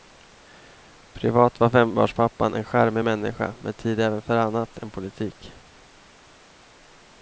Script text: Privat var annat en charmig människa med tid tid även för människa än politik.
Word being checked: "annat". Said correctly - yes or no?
no